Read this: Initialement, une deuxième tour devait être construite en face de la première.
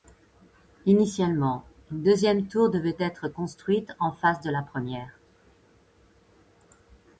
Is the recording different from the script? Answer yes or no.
no